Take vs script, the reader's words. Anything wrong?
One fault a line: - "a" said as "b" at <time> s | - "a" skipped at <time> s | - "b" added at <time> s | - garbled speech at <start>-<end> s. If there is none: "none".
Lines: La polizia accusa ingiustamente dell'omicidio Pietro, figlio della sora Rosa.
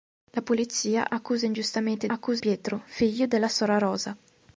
- "dell'omicidio" said as "accusa" at 2.0 s